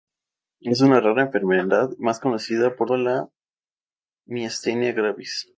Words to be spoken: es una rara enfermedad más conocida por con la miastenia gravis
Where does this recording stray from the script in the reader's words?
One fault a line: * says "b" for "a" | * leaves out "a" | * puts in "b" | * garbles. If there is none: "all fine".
all fine